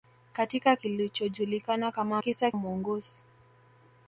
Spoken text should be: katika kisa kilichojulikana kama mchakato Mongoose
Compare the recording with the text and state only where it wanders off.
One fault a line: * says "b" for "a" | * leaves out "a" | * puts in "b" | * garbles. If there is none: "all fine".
* leaves out "kisa"
* says "kisa" for "mchakato"